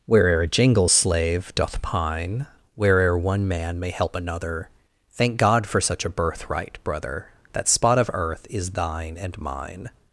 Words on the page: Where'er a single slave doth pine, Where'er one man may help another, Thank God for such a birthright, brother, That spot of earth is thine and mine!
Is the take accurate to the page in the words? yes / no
no